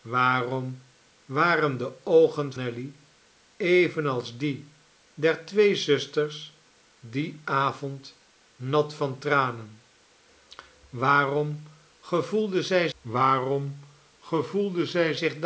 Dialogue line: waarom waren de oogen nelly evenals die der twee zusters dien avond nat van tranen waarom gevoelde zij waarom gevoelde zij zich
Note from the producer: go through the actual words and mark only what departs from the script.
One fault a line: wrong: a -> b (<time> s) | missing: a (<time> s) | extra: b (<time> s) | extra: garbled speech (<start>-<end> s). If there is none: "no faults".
no faults